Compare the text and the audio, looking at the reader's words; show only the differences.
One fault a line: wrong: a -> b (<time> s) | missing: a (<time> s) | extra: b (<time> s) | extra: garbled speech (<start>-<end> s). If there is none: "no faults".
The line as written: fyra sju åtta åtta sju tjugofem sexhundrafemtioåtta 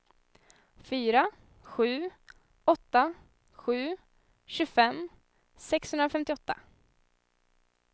missing: åtta (3.1 s)